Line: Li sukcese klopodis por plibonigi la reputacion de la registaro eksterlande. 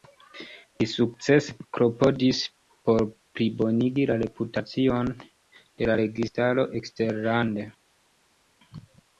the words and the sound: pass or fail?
pass